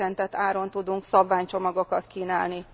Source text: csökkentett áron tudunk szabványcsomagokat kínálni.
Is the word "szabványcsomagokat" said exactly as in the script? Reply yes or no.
yes